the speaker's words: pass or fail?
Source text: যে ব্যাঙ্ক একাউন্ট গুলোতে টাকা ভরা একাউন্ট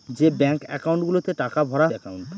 pass